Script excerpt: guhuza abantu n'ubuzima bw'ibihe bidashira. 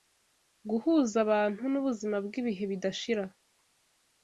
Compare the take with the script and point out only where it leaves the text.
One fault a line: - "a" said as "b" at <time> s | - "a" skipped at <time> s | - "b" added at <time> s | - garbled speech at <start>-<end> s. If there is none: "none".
none